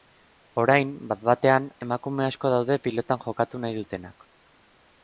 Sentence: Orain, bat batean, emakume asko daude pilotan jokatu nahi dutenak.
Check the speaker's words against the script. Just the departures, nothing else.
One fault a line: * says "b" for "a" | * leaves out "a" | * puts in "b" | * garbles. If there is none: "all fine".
all fine